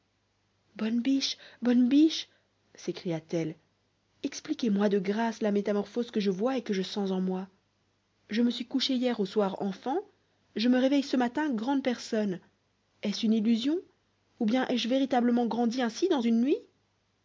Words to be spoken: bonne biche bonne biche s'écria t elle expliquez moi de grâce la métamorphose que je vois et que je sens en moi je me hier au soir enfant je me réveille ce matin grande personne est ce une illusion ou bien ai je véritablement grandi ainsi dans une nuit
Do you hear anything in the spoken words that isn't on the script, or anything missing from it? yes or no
yes